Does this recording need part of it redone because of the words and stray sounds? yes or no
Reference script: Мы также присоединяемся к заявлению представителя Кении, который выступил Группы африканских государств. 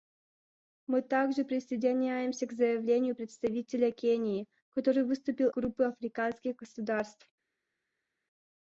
no